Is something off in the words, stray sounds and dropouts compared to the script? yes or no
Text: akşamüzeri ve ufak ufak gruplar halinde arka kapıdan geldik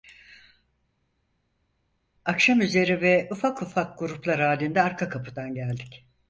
no